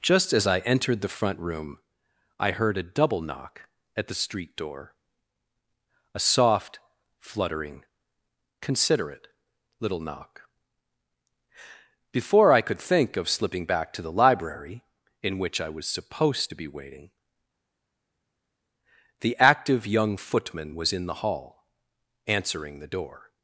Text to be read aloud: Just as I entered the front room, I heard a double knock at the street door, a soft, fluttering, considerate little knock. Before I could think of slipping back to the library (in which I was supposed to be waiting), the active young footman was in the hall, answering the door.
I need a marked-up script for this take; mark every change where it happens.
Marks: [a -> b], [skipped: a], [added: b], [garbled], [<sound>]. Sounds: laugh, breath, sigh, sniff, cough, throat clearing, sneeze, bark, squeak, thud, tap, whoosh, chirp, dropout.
Just as I entered the front room, I heard a double knock at the street door, a soft, fluttering, considerate little knock. Before I could think of slipping back to the library (in which I was supposed to be waiting), the active young footman was in the hall, answering the door.